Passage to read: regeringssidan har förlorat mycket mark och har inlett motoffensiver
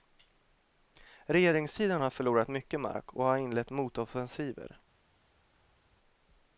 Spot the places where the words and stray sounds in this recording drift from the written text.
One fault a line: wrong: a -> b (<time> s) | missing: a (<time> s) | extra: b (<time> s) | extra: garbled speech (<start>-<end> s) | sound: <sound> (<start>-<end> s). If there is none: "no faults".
no faults